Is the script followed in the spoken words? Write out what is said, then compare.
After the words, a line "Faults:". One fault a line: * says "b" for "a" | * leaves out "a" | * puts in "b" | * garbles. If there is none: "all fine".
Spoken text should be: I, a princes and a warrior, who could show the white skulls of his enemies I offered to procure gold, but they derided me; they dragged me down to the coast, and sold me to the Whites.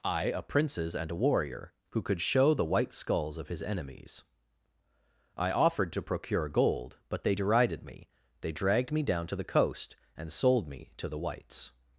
I, a princes and a warrior, who could show the white skulls of his enemies I offered to procure gold, but they derided me; they dragged me down to the coast, and sold me to the Whites.
Faults:
all fine